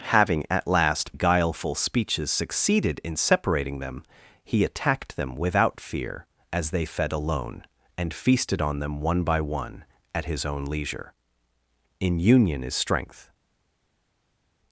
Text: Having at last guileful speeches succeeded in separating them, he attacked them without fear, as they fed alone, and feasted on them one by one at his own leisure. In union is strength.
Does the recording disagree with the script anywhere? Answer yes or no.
no